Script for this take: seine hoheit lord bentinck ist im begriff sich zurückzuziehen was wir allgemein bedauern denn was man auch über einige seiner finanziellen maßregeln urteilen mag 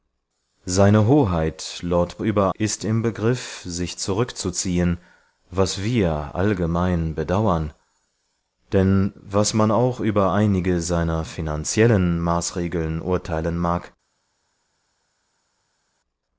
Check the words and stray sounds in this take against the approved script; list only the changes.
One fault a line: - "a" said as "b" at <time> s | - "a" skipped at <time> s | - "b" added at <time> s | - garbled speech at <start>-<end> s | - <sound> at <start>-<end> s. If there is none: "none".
- "bentinck" said as "über" at 2.2 s